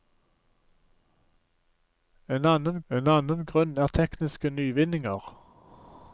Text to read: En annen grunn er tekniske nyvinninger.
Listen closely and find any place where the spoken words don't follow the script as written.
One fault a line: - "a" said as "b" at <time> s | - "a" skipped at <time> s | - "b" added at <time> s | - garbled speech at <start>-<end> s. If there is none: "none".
- "en annen" added at 2.9 s